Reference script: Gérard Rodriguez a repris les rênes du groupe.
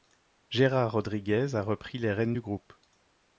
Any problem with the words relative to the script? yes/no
no